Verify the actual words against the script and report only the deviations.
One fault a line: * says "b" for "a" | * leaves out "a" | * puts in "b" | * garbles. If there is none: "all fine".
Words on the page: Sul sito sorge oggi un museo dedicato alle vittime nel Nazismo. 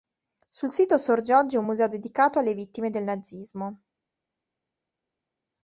* says "del" for "nel"